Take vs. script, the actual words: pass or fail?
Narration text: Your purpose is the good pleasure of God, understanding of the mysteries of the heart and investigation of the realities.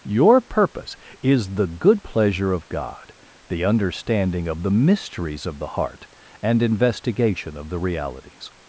fail